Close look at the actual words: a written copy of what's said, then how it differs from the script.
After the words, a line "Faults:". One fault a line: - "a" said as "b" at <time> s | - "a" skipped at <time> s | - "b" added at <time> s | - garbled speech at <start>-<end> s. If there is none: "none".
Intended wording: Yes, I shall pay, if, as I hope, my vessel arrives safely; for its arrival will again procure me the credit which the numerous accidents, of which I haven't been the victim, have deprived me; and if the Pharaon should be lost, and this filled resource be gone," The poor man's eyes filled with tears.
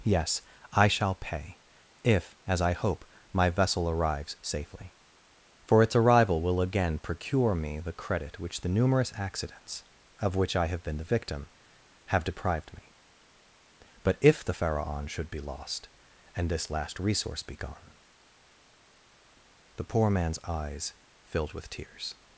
Yes, I shall pay, if, as I hope, my vessel arrives safely; for its arrival will again procure me the credit which the numerous accidents, of which I have been the victim, have deprived me; but if the Pharaon should be lost, and this last resource be gone," The poor man's eyes filled with tears.
Faults:
- "haven't" said as "have" at 10.7 s
- "and" said as "but" at 14.0 s
- "filled" said as "last" at 16.7 s